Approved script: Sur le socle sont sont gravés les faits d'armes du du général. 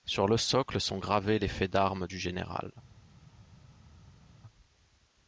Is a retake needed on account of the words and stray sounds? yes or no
yes